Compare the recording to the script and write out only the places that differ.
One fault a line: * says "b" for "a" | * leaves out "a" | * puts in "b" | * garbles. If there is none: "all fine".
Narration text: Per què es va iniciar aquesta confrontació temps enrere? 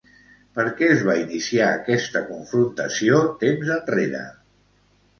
all fine